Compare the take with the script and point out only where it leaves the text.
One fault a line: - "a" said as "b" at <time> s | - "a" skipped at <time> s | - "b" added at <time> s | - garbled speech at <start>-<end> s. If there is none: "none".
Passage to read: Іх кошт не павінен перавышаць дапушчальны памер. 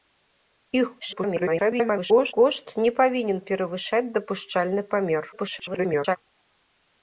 - garbled speech at 1.0-2.3 s
- garbled speech at 5.3-6.2 s